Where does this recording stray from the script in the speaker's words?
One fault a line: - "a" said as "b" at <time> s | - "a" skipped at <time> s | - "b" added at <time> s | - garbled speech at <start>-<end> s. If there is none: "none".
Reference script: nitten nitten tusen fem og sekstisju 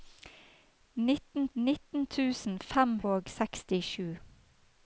none